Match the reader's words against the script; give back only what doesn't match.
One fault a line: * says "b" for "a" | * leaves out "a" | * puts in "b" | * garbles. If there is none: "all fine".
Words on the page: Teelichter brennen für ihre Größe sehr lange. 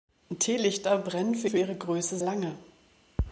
* puts in "für"
* leaves out "sehr"